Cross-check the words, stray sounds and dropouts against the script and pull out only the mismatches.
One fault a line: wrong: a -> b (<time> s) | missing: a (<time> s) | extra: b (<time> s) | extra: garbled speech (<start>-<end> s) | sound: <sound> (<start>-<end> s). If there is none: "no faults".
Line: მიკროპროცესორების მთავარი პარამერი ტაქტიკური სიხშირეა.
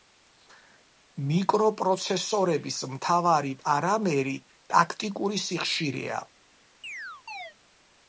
sound: chirp (6.8-7.5 s)